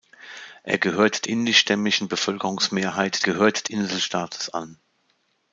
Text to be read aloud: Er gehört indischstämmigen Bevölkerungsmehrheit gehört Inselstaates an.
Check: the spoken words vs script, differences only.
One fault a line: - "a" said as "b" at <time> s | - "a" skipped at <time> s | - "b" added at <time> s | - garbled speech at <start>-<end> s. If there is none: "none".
none